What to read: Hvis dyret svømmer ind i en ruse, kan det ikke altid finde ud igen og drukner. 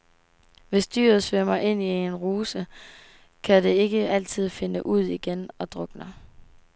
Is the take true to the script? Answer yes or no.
yes